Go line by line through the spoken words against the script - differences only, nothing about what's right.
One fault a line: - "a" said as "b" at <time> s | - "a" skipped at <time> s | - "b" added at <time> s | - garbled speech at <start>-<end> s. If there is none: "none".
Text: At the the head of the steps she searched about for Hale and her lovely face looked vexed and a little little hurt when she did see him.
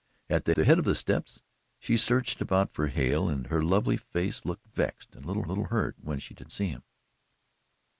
none